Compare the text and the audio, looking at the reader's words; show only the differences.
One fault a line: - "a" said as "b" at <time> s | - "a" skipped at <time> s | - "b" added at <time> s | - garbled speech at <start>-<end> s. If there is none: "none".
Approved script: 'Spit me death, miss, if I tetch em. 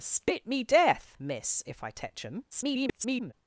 - garbled speech at 2.5-3.3 s